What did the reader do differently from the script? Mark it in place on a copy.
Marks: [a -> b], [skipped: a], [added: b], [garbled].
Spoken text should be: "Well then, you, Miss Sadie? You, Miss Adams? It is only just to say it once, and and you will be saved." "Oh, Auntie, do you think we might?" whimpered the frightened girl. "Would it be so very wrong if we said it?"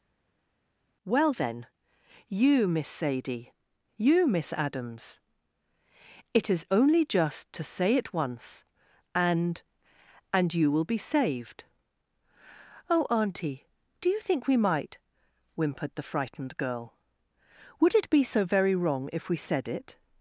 "Well then, you, Miss Sadie? You, Miss Adams? It is only just to say it once, and and you will be saved." "Oh, Auntie, do you think we might?" whimpered the frightened girl. "Would it be so very wrong if we said it?"